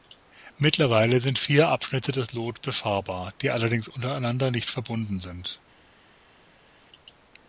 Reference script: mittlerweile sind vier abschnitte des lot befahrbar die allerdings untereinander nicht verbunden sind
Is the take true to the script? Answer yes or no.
yes